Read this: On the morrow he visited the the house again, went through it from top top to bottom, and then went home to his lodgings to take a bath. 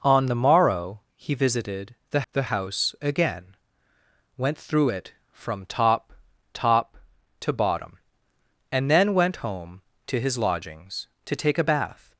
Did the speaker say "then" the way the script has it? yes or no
yes